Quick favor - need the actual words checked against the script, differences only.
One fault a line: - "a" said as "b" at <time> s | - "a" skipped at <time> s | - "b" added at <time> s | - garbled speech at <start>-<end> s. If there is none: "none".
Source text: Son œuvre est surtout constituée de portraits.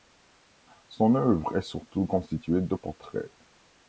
none